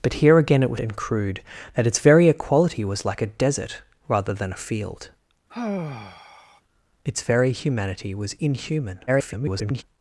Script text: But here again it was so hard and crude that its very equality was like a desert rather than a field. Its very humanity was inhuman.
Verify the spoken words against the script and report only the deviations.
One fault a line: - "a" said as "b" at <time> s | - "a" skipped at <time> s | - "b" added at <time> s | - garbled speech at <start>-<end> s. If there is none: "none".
- "so hard" skipped at 0.8 s
- garbled speech at 9.1-9.8 s